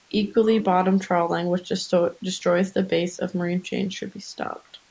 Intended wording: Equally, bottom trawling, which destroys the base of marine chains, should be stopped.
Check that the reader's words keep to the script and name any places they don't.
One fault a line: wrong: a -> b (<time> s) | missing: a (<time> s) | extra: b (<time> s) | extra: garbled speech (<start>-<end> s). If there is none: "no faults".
no faults